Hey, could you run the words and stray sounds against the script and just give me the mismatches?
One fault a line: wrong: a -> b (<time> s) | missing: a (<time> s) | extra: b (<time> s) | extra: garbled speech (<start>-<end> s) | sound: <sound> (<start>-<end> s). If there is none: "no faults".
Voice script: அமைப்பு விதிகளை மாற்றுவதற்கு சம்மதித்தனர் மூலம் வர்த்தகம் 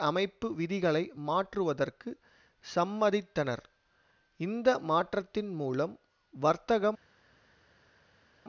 extra: இந்த மாற்றத்தின் (4.4 s)